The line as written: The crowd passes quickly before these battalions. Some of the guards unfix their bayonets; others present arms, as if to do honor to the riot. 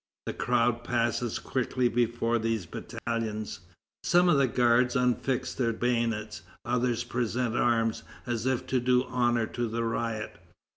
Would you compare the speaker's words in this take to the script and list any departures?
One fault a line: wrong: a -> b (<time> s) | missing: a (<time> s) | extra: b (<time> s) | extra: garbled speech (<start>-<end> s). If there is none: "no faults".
no faults